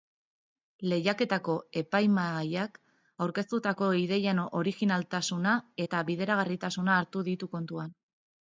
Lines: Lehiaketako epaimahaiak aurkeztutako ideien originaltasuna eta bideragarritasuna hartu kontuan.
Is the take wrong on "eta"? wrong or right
right